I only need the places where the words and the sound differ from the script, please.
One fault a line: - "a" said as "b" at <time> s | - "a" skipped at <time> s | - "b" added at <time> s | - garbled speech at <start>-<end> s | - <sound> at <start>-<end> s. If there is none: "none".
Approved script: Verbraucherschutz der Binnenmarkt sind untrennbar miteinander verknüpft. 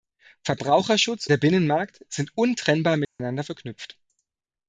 - dropout at 3.0-3.2 s